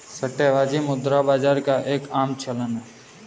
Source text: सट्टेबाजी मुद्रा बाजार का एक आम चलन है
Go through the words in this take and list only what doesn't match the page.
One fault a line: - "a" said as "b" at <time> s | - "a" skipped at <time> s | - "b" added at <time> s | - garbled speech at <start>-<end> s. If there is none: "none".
none